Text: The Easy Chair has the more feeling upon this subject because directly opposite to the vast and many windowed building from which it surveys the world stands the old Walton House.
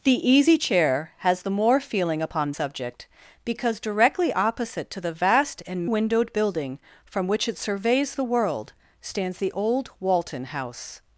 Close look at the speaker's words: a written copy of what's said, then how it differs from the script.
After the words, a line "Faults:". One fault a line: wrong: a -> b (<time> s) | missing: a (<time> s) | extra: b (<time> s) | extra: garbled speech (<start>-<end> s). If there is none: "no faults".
The Easy Chair has the more feeling upon subject because directly opposite to the vast and windowed building from which it surveys the world stands the old Walton House.
Faults:
missing: this (2.5 s)
missing: many (5.9 s)